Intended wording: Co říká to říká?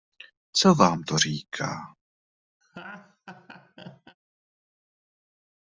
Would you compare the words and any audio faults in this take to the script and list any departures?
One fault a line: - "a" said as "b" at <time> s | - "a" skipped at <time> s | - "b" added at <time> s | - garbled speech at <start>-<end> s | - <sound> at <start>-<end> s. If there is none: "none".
- "říká" said as "vám" at 0.8 s
- laugh at 2.6-4.2 s